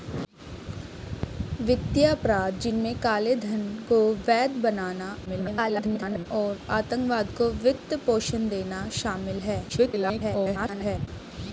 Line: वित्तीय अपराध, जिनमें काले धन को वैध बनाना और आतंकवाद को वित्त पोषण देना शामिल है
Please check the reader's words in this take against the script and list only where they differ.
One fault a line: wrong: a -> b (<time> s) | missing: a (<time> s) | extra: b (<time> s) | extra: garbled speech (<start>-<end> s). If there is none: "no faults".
extra: garbled speech (5.2-6.3 s)
extra: garbled speech (9.7-11.1 s)